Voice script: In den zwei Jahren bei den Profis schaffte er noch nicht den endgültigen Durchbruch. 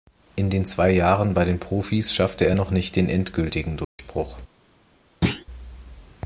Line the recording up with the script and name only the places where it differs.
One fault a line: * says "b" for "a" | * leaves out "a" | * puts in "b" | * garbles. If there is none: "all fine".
all fine